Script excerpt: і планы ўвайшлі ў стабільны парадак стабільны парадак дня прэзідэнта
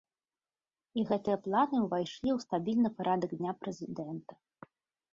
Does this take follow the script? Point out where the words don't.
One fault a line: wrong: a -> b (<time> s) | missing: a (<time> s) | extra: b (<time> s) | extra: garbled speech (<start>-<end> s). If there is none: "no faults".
extra: гэтыя (1.1 s)
missing: стабільны парадак (3.3 s)